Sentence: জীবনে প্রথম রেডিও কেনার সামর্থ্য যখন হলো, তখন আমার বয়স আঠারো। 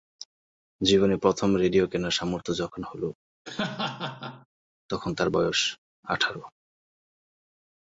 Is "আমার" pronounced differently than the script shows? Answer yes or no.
yes